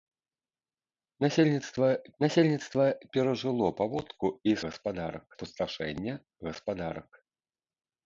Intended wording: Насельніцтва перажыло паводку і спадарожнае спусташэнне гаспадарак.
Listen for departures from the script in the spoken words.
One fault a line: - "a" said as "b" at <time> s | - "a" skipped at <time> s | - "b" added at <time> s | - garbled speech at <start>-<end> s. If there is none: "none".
- "насельніцтва" added at 2.2 s
- "спадарожнае" said as "гаспадарак" at 4.7 s